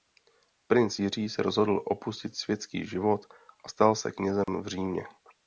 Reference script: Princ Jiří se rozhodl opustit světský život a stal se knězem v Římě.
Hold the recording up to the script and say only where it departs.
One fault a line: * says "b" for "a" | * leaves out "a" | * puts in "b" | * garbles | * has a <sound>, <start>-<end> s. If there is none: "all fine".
* has a dropout, 4.4-4.5 s